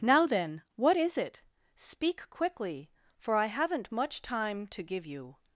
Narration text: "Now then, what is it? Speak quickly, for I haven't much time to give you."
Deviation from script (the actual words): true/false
false